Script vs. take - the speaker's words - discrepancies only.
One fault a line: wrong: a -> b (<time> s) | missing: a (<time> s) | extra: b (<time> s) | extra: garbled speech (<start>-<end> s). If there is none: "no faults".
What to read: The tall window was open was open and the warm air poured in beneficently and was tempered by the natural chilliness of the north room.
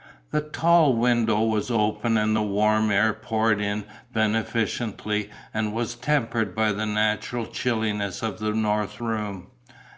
missing: was open (2.2 s)